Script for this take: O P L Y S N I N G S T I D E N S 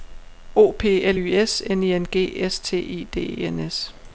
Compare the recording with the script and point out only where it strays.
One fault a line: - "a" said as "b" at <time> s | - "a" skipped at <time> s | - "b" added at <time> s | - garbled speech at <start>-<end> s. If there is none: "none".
none